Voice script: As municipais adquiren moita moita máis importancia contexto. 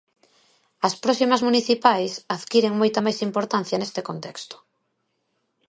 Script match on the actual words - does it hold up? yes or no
no